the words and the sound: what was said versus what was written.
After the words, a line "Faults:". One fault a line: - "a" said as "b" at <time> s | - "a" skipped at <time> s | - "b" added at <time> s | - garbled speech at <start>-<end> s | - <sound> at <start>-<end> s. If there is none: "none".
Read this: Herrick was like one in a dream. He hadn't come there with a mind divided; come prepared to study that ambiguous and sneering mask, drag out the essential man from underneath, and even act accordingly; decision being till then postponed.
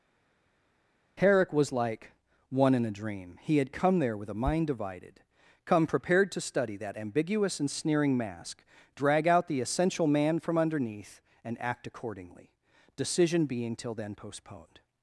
Herrick was like one in a dream. He had come there with a mind divided; come prepared to study that ambiguous and sneering mask, drag out the essential man from underneath, and act accordingly; decision being till then postponed.
Faults:
- "hadn't" said as "had" at 3.6 s
- "even" skipped at 11.6 s